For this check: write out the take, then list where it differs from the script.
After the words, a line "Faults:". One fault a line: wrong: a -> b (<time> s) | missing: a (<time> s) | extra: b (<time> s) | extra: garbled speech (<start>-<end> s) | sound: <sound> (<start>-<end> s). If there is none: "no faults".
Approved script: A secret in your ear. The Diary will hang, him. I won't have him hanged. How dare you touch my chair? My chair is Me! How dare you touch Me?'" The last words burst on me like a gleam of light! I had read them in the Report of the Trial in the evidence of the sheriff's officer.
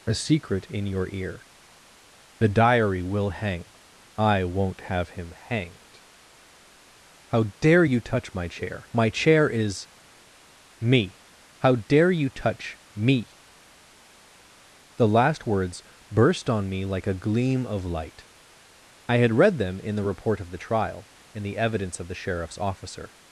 A secret in your ear. The Diary will hang. I won't have him hanged. How dare you touch my chair? My chair is Me! How dare you touch Me?'" The last words burst on me like a gleam of light! I had read them in the Report of the Trial in the evidence of the sheriff's officer.
Faults:
missing: him (3.6 s)